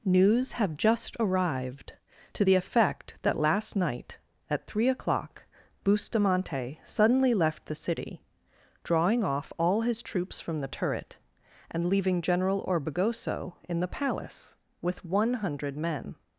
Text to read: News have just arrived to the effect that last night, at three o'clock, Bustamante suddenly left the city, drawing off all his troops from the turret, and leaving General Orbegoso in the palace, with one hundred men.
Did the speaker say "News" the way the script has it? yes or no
yes